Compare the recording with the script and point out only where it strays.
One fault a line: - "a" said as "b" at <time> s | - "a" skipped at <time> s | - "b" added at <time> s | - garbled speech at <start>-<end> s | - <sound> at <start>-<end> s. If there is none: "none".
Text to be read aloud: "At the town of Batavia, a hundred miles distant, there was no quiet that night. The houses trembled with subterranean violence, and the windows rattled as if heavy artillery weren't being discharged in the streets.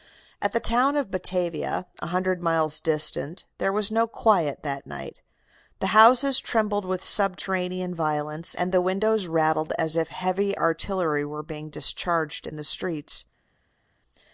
- "weren't" said as "were" at 11.2 s